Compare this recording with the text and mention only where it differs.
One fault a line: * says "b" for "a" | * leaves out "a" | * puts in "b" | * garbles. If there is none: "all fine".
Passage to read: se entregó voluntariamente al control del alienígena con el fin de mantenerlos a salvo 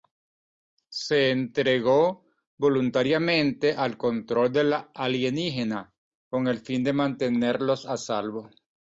all fine